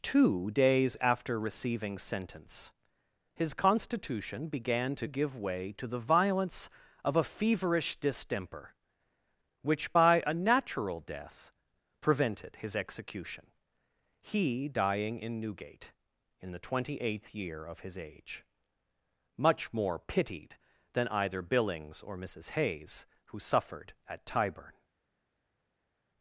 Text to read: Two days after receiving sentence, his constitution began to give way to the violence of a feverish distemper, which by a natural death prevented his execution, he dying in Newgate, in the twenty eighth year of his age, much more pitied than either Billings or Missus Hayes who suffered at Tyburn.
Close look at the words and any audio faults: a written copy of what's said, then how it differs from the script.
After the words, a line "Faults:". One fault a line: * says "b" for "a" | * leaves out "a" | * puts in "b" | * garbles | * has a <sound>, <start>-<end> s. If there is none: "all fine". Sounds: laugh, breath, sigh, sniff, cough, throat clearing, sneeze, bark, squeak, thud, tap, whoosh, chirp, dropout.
Two days after receiving sentence, his constitution began to give way to the violence of a feverish distemper, which by a natural death prevented his execution, he dying in Newgate, in the twenty eighth year of his age, much more pitied than either Billings or Missus Hayes who suffered at Tyburn.
Faults:
all fine